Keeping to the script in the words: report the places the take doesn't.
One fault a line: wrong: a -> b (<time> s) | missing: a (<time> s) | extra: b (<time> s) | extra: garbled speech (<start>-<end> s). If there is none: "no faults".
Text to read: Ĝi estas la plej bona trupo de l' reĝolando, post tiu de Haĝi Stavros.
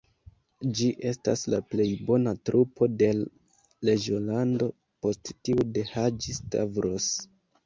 no faults